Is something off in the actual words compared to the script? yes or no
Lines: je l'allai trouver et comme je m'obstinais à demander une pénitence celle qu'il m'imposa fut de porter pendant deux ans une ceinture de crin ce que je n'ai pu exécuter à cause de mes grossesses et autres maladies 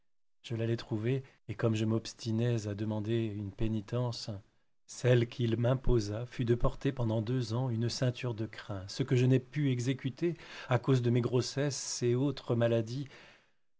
no